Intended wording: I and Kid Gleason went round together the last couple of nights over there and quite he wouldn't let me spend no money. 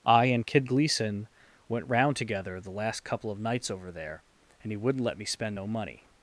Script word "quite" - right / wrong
wrong